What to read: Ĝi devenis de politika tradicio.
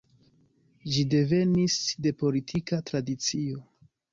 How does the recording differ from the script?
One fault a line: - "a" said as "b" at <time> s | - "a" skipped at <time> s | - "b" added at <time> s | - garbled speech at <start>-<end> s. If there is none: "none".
none